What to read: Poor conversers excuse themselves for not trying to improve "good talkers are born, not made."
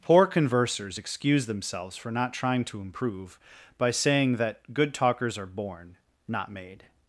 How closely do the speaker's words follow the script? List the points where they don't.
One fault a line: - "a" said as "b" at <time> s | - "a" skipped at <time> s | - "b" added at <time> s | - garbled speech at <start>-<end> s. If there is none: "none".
- "by saying that" added at 3.8 s